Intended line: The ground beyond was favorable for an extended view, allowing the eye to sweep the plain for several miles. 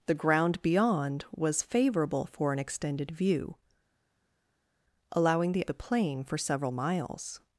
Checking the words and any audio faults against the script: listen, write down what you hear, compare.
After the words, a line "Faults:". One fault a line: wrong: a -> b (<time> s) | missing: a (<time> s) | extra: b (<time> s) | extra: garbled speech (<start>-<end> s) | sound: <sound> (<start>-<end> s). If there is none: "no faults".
The ground beyond was favorable for an extended view, allowing the the plain for several miles.
Faults:
missing: eye to sweep (5.7 s)